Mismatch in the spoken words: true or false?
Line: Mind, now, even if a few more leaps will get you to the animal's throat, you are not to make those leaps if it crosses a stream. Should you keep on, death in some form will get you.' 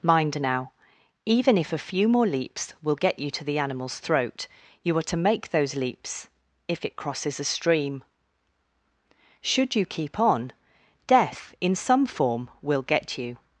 true